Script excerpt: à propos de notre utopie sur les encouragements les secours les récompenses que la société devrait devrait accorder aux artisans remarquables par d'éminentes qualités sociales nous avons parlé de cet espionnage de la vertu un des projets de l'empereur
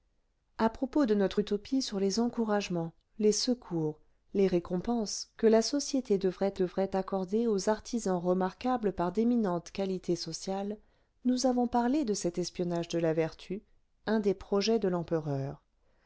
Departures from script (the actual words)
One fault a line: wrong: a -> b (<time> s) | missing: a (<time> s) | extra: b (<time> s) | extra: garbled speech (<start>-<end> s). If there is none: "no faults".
no faults